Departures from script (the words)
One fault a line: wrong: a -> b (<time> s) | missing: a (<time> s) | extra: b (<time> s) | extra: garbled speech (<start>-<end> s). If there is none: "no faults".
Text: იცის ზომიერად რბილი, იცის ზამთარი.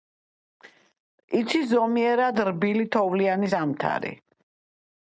wrong: იცის -> თოვლიანი (3.0 s)